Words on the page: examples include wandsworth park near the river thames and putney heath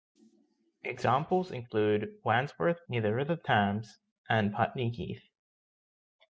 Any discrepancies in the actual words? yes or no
yes